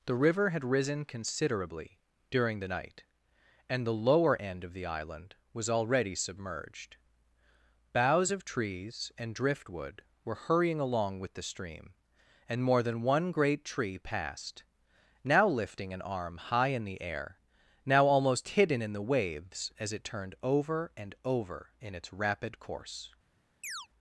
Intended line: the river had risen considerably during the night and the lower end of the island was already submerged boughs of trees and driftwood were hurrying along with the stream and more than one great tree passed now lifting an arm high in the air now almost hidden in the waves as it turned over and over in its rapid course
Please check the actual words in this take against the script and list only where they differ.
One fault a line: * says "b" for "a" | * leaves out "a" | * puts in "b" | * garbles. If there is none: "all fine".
all fine